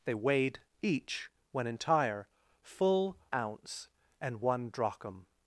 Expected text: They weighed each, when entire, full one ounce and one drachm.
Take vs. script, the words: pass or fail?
fail